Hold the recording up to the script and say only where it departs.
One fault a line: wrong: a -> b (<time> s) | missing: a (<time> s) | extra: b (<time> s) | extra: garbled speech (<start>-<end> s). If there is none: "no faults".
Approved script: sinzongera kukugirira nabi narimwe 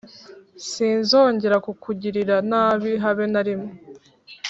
extra: habe (3.0 s)